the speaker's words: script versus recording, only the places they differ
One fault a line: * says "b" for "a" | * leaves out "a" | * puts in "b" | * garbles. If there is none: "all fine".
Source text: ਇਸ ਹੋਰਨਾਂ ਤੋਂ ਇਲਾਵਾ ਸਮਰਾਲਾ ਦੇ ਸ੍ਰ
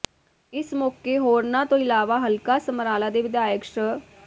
* puts in "ਮੌਕੇ"
* puts in "ਹਲਕਾ"
* puts in "ਵਿਧਾਇਕ"